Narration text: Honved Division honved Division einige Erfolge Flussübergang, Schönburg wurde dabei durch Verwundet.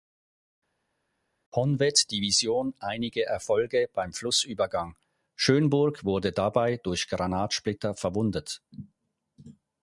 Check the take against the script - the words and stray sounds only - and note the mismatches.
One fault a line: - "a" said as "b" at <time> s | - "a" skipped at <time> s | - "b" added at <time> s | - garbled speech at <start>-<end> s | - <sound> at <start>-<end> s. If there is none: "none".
- "honved Division" skipped at 2.7 s
- "beim" added at 3.9 s
- "Granatsplitter" added at 7.1 s